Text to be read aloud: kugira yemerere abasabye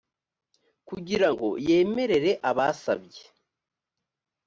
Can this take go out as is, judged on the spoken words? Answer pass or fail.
fail